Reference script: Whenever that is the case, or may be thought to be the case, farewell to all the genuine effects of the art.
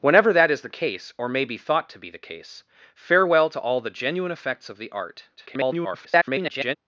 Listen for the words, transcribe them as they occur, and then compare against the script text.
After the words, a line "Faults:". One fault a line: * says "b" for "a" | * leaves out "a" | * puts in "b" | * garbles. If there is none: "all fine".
Whenever that is the case, or may be thought to be the case, farewell to all the genuine effects of the art. [garbled]
Faults:
* garbles